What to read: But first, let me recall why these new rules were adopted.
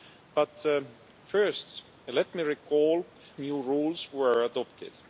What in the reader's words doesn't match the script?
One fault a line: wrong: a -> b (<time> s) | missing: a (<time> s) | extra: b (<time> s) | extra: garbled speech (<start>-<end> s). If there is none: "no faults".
missing: why these (3.1 s)